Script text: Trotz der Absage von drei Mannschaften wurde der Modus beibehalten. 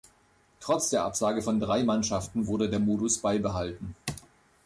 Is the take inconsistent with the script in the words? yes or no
no